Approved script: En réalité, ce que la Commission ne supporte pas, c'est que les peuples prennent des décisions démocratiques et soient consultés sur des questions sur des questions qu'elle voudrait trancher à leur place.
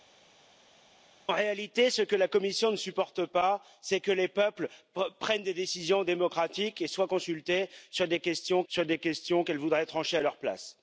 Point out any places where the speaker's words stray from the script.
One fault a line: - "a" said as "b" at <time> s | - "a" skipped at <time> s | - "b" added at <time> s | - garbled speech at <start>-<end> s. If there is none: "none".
none